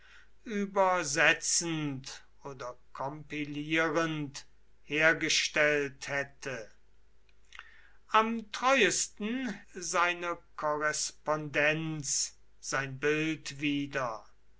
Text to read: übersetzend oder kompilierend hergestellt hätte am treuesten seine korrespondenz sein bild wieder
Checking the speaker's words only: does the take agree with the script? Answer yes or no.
yes